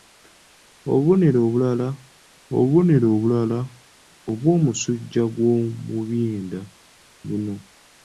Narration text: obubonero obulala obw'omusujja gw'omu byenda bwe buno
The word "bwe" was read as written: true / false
false